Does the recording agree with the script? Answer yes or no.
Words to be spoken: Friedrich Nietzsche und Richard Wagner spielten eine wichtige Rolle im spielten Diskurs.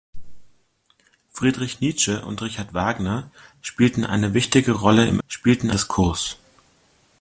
yes